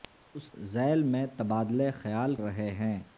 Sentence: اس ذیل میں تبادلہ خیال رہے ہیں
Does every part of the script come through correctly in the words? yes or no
yes